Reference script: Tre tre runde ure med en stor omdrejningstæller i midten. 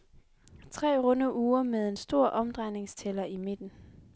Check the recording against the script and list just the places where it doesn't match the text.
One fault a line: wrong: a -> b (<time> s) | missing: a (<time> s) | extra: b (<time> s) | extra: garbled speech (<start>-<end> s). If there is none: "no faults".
missing: tre (1.0 s)